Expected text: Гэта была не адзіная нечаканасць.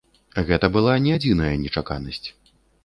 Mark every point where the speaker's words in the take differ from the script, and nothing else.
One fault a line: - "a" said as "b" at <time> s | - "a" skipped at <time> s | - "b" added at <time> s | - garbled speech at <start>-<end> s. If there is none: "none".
none